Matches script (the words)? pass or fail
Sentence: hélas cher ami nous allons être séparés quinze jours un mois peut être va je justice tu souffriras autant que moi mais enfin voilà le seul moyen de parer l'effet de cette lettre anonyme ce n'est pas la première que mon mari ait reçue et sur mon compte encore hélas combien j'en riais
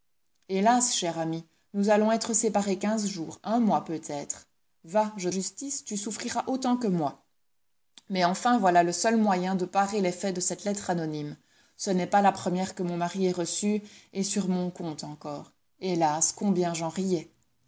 pass